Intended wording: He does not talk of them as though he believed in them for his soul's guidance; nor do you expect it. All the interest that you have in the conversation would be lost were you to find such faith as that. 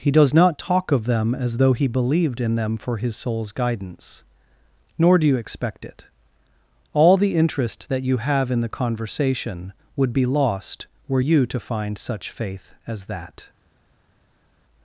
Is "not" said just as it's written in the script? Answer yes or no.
yes